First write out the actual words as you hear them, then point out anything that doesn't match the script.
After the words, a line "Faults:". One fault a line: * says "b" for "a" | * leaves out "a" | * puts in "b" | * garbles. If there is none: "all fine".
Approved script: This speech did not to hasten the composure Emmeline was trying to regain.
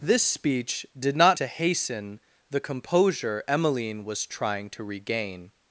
This speech did not to hasten the composure Emmeline was trying to regain.
Faults:
all fine